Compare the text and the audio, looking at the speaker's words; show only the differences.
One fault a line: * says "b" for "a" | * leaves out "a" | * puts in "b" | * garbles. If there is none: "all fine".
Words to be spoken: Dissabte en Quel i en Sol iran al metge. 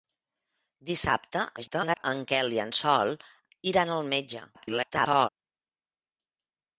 * garbles
* garbles